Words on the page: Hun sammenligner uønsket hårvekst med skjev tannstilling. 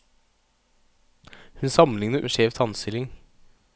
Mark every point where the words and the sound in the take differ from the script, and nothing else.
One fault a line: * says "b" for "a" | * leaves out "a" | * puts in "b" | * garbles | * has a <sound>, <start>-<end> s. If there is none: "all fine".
* leaves out "uønsket hårvekst"